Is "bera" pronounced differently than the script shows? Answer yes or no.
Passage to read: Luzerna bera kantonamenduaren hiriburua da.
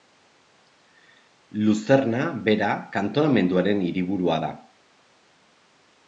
no